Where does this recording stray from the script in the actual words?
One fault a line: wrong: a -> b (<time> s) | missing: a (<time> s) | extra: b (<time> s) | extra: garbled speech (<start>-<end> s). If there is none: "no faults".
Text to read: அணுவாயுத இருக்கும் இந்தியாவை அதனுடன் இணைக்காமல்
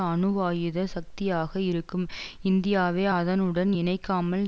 extra: சக்தியாக (0.8 s)